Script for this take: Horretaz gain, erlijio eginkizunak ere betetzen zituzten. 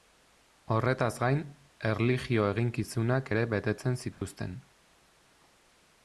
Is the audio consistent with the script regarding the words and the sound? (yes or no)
no